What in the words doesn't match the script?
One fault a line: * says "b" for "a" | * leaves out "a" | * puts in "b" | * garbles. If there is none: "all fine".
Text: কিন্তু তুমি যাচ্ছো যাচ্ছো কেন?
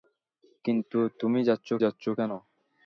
all fine